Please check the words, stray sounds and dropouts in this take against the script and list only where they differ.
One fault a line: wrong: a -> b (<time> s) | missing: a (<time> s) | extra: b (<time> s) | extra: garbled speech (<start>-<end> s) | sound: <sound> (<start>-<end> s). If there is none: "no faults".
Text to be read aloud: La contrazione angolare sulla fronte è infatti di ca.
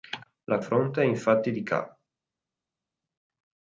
missing: contrazione angolare sulla (0.6 s)